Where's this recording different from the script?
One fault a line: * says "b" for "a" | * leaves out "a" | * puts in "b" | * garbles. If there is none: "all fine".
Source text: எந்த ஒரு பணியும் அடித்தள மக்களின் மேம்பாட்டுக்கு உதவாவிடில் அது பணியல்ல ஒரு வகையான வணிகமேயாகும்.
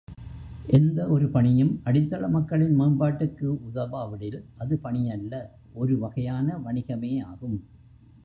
all fine